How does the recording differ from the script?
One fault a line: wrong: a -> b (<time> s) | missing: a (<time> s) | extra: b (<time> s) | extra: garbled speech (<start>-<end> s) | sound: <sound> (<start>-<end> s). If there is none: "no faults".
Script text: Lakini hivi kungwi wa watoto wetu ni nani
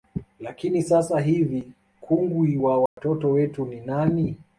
extra: sasa (0.8 s)
sound: dropout (2.9-3.0 s)